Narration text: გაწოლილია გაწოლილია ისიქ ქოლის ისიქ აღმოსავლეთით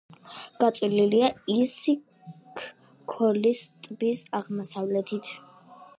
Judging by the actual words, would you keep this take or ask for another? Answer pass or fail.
fail